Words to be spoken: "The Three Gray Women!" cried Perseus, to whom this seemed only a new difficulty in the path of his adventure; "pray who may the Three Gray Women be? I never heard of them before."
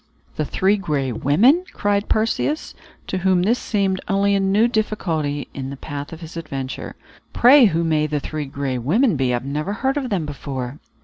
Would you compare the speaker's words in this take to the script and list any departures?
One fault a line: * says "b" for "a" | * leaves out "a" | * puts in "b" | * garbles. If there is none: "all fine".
all fine